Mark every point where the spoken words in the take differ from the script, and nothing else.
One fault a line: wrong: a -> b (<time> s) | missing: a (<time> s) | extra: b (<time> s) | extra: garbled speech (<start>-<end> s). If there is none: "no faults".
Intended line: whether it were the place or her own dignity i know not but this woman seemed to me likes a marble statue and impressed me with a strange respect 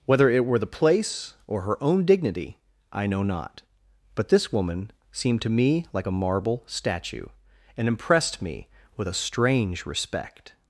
wrong: likes -> like (5.9 s)